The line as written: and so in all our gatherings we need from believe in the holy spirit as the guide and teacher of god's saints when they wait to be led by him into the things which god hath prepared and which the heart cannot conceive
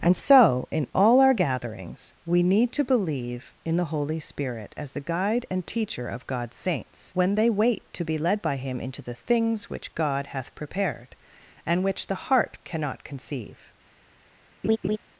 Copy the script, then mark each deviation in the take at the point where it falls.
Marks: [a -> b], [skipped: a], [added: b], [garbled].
and so in all our gatherings we need [from -> to] believe in the holy spirit as the guide and teacher of god's saints when they wait to be led by him into the things which god hath prepared and which the heart cannot conceive